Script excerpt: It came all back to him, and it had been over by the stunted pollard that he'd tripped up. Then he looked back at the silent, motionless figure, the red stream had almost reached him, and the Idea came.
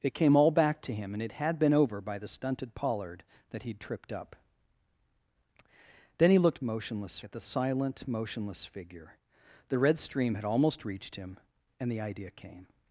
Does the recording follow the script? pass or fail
fail